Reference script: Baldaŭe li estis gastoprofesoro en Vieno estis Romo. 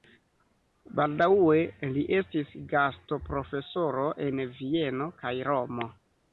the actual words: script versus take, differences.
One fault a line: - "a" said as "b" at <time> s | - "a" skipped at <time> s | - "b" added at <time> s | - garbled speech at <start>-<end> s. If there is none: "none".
- "estis" said as "kaj" at 5.2 s